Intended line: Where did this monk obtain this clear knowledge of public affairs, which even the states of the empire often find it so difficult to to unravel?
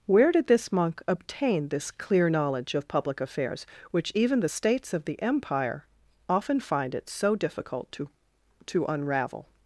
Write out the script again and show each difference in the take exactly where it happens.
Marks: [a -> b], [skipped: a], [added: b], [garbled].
Where did this monk obtain this clear knowledge of public affairs, which even the states of the empire often find it so difficult to to unravel?